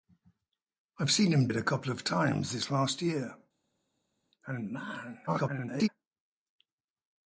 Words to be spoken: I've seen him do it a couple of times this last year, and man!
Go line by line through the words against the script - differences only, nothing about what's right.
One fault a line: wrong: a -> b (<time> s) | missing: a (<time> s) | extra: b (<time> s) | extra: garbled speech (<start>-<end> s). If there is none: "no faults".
missing: do (1.5 s)
extra: garbled speech (5.3-5.9 s)